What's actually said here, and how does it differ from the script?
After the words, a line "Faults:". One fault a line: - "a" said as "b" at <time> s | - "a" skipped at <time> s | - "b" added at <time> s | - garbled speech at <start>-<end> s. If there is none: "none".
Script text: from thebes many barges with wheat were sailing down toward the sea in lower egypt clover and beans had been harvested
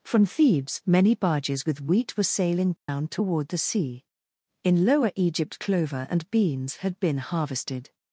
from thebes many barges with wheat were sailing down toward the sea in lower egypt clover and beans had been harvested
Faults:
none